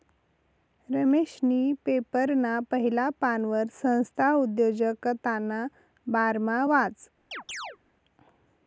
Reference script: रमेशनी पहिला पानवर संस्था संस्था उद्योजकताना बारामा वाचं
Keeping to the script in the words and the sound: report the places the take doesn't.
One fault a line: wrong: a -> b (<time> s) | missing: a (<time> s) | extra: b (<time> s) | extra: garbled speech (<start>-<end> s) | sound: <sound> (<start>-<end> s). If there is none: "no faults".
extra: पेपरना (1.9 s)
missing: संस्था (4.3 s)
sound: chirp (7.3-7.8 s)